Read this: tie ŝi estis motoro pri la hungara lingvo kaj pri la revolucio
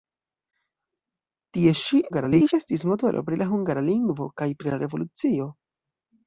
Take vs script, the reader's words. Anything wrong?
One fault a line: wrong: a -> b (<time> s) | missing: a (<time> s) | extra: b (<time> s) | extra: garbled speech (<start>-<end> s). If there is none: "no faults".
extra: garbled speech (2.1-2.5 s)